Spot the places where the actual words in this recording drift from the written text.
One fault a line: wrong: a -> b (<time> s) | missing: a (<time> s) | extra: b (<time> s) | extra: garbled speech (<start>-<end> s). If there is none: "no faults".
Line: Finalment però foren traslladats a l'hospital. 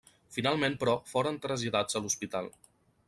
no faults